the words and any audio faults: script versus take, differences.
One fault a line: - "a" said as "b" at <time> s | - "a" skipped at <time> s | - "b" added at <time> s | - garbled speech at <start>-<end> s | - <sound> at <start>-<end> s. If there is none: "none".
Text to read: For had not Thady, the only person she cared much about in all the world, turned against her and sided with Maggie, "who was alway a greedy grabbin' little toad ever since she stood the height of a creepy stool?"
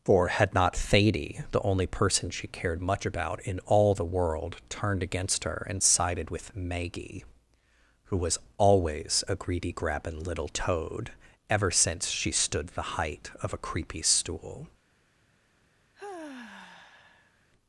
- "alway" said as "always" at 8.6 s
- sigh at 15.9-17.5 s